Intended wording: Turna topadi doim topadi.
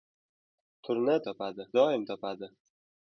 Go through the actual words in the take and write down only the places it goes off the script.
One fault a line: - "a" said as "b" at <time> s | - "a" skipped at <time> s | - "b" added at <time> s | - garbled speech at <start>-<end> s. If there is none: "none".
none